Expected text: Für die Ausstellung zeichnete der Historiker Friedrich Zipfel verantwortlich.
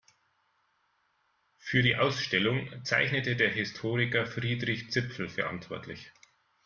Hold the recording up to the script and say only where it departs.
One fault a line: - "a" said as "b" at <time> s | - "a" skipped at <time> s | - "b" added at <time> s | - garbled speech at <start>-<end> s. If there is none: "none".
none